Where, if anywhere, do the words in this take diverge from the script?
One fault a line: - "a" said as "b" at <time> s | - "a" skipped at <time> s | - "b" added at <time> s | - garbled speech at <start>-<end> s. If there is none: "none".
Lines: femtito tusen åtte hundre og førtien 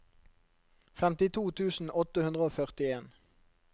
none